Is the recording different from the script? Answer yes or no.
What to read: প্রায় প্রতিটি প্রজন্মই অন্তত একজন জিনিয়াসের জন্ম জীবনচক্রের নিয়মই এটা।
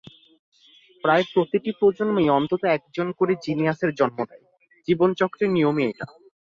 yes